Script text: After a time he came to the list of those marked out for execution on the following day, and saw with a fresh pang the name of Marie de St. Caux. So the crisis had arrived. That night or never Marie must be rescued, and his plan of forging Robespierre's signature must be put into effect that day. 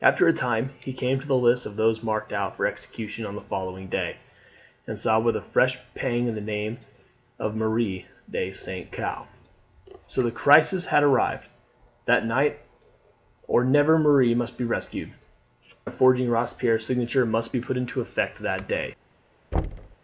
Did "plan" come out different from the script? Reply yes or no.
yes